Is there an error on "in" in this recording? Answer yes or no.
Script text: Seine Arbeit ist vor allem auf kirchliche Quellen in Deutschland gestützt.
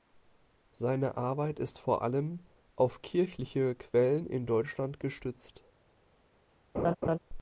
no